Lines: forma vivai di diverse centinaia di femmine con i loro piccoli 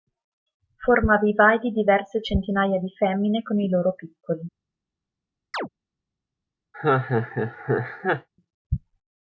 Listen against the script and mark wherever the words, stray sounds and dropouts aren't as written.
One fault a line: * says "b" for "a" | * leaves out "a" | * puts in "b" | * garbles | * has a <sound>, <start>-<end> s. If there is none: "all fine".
* has a chirp, 5.5-5.7 s
* has a laugh, 6.7-8.3 s